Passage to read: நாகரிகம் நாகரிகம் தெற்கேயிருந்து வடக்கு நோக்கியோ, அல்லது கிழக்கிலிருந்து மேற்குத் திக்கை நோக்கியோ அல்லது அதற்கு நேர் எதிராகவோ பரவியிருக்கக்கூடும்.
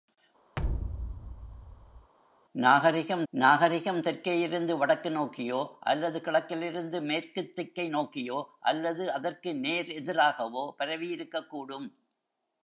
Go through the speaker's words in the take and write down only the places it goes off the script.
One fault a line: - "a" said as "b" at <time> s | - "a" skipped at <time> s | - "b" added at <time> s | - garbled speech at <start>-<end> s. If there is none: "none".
none